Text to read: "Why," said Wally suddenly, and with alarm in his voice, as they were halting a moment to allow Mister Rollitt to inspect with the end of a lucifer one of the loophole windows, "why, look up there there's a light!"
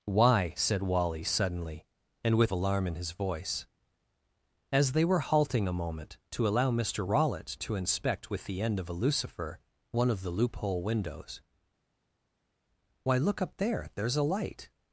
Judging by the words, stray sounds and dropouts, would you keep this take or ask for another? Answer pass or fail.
pass